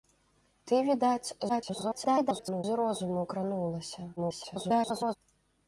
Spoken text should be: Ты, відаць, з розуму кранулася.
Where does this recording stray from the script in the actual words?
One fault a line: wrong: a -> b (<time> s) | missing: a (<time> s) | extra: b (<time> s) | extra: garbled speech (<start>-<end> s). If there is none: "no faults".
extra: garbled speech (1.5-2.6 s)
extra: garbled speech (4.2-5.2 s)